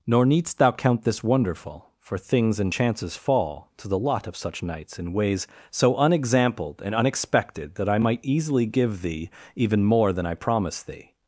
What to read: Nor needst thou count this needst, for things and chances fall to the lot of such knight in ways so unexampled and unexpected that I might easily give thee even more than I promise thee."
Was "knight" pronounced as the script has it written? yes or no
no